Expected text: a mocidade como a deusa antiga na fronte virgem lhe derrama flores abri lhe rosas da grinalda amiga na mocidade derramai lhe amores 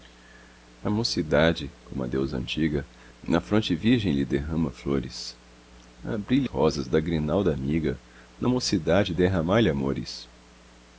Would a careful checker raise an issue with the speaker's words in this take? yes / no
no